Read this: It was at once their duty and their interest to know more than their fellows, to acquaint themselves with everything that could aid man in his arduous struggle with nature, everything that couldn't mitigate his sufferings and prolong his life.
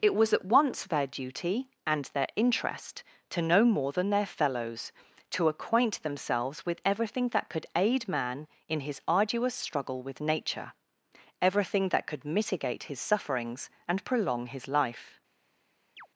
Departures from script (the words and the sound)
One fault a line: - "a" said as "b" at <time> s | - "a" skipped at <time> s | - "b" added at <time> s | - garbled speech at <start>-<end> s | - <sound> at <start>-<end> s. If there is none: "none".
- "couldn't" said as "could" at 12.1 s
- chirp at 16.0-16.1 s